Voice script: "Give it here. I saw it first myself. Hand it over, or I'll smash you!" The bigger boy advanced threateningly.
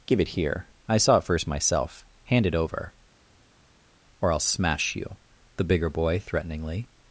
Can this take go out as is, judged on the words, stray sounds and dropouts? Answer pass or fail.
fail